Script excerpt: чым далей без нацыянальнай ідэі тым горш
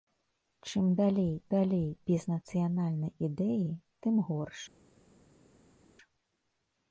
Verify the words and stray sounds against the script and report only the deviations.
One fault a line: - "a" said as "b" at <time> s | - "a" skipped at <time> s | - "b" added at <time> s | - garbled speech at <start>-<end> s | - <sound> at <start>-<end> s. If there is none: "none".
- "далей" added at 1.5 s